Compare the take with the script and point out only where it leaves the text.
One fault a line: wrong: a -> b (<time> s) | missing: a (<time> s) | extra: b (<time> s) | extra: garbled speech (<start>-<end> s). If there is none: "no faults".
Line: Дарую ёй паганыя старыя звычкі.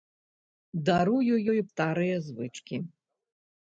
missing: паганыя (1.6 s)